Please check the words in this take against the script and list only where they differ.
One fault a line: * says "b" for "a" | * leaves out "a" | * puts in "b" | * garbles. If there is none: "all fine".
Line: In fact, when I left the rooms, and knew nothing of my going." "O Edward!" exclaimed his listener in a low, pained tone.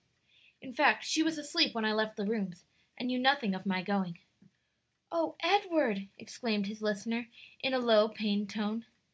* puts in "she was asleep"